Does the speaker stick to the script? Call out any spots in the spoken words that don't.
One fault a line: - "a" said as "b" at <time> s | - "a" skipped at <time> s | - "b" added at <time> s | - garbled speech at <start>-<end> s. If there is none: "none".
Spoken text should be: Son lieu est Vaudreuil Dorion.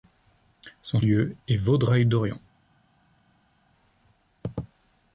none